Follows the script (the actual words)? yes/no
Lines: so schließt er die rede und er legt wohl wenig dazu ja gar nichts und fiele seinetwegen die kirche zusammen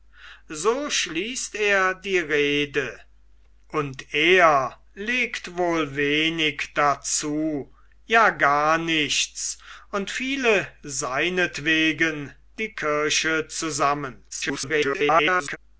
no